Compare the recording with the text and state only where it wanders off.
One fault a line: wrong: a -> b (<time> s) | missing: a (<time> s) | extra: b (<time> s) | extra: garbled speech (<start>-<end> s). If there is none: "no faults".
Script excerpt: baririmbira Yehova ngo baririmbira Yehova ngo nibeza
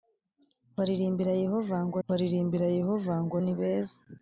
no faults